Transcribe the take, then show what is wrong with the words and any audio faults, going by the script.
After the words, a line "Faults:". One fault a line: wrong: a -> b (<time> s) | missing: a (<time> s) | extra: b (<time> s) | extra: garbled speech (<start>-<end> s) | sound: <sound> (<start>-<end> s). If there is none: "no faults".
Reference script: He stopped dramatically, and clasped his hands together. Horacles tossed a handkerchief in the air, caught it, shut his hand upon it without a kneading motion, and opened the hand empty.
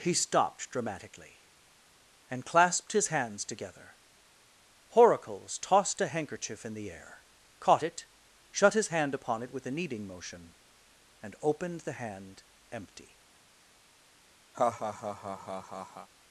He stopped dramatically, and clasped his hands together. Horacles tossed a handkerchief in the air, caught it, shut his hand upon it with a kneading motion, and opened the hand empty.
Faults:
wrong: without -> with (9.5 s)
sound: laugh (14.5-16.1 s)